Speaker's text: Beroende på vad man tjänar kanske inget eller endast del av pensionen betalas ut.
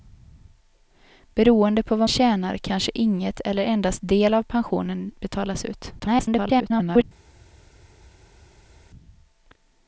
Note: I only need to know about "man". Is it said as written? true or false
false